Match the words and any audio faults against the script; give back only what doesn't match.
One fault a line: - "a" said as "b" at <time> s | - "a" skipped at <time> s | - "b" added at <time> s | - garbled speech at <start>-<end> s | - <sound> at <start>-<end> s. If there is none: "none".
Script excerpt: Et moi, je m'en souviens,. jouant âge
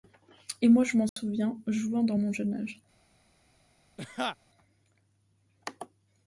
- dropout at 1.1-1.2 s
- "dans mon jeune" added at 2.0 s
- laugh at 4.0-4.4 s